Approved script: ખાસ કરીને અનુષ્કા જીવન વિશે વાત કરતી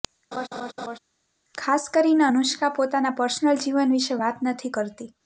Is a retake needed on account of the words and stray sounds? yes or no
yes